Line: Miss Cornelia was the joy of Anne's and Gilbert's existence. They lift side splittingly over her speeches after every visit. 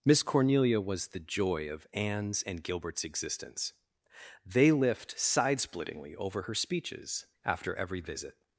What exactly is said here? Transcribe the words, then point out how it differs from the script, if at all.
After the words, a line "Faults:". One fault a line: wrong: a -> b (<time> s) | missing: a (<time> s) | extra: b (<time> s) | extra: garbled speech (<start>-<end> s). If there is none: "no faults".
Miss Cornelia was the joy of Anne's and Gilbert's existence. They lift side splittingly over her speeches after every visit.
Faults:
no faults